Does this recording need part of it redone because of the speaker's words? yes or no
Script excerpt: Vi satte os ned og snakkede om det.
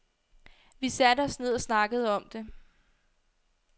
no